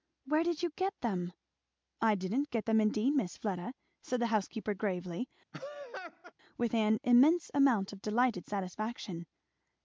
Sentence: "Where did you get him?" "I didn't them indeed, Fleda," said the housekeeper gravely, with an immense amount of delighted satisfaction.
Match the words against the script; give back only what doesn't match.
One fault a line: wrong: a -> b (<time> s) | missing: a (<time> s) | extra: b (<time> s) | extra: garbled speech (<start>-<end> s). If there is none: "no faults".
wrong: him -> them (1.0 s)
extra: get (2.5 s)
extra: Miss (3.1 s)